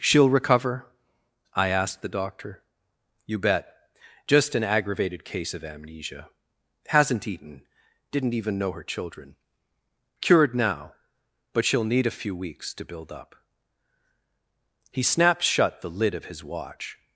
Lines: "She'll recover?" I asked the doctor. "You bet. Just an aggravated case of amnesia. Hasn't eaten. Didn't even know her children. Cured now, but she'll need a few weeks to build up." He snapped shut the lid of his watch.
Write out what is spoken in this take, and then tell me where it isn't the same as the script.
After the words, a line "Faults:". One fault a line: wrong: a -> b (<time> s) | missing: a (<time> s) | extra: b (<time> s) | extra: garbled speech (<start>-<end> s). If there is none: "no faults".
"She'll recover?" I asked the doctor. "You bet. Just an aggravated case of amnesia. Hasn't eaten. Didn't even know her children. Cured now, but she'll need a few weeks to build up." He snapped shut the lid of his watch.
Faults:
no faults